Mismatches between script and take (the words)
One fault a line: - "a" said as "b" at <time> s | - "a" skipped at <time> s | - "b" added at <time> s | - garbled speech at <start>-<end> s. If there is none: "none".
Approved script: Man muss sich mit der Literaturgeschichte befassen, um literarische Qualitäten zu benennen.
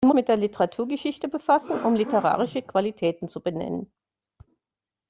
- "muss sich" skipped at 0.1 s